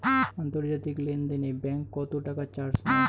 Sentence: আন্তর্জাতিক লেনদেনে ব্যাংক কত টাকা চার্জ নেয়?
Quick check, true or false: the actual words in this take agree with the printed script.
true